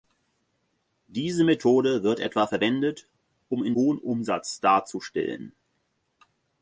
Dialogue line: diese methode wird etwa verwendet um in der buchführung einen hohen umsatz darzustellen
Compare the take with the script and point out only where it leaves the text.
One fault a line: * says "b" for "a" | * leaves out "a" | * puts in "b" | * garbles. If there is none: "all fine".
* leaves out "der buchführung einen"